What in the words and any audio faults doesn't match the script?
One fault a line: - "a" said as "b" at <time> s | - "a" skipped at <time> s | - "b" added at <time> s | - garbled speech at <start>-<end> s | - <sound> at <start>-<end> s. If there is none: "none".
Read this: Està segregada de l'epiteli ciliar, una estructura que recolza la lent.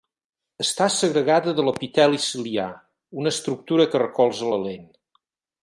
none